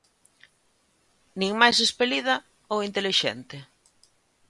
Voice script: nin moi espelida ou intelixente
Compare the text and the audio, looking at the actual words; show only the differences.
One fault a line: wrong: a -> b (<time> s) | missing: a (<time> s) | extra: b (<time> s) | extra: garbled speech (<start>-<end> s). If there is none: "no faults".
wrong: moi -> máis (1.6 s)